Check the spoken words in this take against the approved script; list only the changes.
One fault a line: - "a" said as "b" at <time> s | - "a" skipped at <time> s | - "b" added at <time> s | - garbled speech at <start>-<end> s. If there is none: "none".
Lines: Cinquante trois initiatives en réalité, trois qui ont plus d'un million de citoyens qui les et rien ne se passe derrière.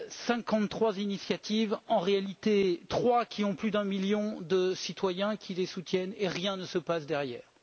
- "soutiennent" added at 5.7 s